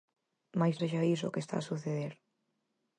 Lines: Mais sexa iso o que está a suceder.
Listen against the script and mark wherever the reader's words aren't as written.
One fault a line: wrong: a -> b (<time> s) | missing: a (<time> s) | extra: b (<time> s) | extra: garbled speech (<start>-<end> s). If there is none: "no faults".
no faults